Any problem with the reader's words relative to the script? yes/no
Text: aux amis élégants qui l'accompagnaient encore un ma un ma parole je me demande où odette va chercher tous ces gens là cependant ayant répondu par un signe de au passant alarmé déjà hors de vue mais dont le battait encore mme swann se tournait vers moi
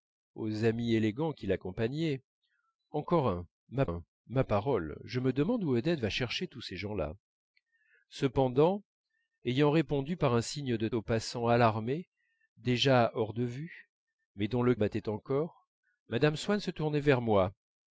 no